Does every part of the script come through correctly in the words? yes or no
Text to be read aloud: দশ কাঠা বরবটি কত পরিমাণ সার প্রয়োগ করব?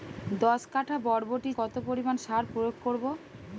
yes